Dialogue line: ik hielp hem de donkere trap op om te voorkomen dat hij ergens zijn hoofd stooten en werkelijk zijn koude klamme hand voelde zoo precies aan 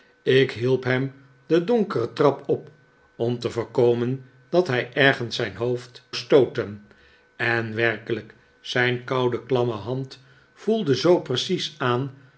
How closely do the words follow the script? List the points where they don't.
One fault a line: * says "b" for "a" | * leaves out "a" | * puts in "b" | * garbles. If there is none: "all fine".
all fine